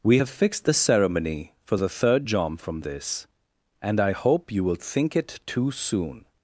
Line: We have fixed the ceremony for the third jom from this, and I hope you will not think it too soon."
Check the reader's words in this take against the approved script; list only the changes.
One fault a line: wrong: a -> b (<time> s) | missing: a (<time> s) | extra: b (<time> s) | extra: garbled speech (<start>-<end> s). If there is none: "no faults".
missing: not (4.7 s)